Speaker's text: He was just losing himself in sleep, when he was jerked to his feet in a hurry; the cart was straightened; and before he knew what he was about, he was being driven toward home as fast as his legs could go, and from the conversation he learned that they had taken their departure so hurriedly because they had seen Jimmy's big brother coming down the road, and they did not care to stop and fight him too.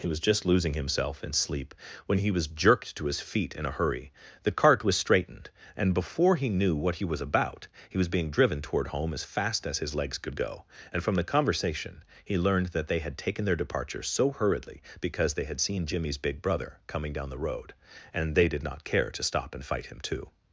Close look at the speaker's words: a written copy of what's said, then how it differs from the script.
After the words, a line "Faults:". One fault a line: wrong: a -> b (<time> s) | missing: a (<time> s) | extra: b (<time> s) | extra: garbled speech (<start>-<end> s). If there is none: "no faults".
He was just losing himself in sleep, when he was jerked to his feet in a hurry; the cart was straightened; and before he knew what he was about, he was being driven toward home as fast as his legs could go, and from the conversation he learned that they had taken their departure so hurriedly because they had seen Jimmy's big brother coming down the road, and they did not care to stop and fight him too.
Faults:
no faults